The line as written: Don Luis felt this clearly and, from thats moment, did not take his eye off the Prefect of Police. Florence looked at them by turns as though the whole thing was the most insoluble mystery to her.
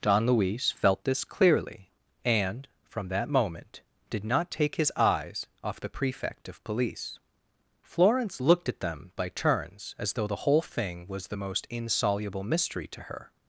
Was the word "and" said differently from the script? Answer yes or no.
no